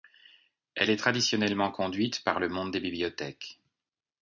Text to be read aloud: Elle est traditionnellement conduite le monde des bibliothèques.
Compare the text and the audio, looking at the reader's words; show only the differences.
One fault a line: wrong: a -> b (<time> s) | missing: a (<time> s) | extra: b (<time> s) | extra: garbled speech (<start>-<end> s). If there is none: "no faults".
extra: par (2.2 s)